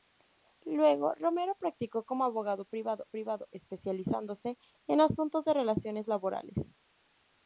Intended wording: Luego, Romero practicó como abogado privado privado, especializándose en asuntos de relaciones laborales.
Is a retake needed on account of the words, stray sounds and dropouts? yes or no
no